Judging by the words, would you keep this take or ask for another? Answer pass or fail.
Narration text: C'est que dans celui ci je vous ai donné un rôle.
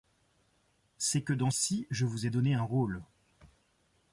fail